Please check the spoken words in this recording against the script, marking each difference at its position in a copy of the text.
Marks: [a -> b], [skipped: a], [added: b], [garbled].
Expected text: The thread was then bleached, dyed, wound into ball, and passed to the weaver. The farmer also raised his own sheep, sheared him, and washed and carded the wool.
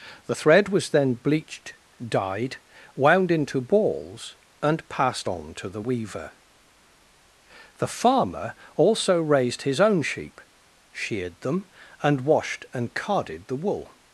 The thread was then bleached, dyed, wound into [ball, -> balls] and passed [added: on] to the weaver. The farmer also raised his own sheep, sheared [him, -> them] and washed and carded the wool.